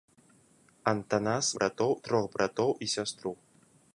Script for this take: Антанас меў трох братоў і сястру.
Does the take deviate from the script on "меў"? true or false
true